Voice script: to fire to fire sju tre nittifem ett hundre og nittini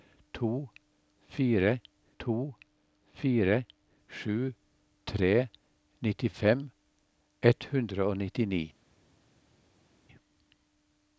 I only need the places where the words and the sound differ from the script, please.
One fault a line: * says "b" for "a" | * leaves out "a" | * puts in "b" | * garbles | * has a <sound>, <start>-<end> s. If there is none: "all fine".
all fine